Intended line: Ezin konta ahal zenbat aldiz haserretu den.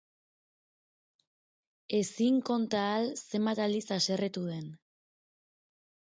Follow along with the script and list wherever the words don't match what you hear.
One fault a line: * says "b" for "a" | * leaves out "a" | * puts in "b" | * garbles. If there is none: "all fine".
all fine